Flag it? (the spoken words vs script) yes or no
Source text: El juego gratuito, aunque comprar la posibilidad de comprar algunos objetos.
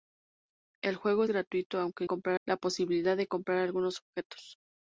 no